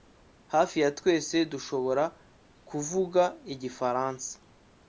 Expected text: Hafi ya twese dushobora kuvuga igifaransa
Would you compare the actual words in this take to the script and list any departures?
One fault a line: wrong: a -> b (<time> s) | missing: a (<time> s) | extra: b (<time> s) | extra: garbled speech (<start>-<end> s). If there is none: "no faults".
no faults